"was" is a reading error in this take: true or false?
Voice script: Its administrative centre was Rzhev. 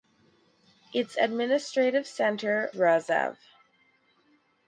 true